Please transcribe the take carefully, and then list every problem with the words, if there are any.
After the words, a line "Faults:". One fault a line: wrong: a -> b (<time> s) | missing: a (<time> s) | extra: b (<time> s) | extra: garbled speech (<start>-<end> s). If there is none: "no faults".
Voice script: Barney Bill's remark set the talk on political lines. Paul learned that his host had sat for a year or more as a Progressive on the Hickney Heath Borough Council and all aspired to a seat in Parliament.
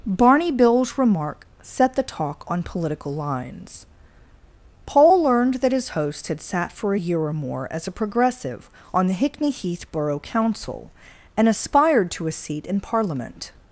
Barney Bill's remark set the talk on political lines. Paul learned that his host had sat for a year or more as a Progressive on the Hickney Heath Borough Council and aspired to a seat in Parliament.
Faults:
missing: all (11.5 s)